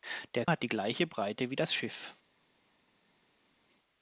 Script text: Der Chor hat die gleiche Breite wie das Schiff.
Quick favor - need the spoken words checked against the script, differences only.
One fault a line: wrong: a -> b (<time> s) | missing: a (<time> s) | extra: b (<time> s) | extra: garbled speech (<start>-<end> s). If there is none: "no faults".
missing: Chor (0.5 s)